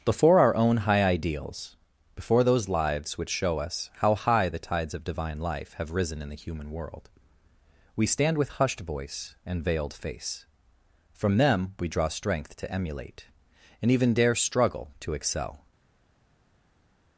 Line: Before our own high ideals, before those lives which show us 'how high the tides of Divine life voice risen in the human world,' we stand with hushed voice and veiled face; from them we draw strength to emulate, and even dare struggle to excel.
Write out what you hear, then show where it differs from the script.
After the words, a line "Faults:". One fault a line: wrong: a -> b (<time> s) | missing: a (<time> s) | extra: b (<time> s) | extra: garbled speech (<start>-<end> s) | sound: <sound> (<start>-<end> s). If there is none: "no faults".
Before our own high ideals, before those lives which show us 'how high the tides of Divine life have risen in the human world,' we stand with hushed voice and veiled face; from them we draw strength to emulate, and even dare struggle to excel.
Faults:
wrong: voice -> have (5.7 s)